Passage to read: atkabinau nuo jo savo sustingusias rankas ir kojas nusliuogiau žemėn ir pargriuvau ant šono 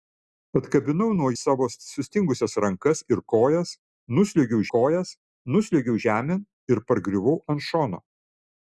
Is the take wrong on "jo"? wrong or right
wrong